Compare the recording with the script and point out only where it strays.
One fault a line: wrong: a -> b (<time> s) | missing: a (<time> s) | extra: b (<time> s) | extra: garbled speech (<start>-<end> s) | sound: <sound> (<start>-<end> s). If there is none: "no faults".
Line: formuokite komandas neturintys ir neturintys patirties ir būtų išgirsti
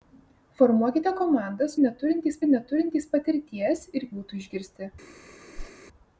sound: whoosh (5.5-5.7 s)